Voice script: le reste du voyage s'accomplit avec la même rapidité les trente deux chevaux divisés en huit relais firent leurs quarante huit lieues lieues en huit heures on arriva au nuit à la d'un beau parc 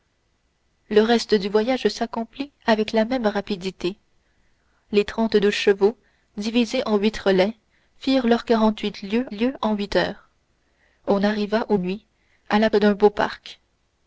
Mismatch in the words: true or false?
false